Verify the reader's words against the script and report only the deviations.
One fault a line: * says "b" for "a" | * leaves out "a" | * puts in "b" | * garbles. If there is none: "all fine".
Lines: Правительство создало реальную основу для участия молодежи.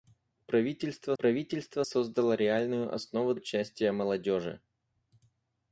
* puts in "правительство"
* leaves out "для"